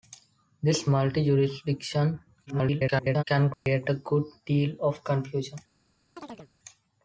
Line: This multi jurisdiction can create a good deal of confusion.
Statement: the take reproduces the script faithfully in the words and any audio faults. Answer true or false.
false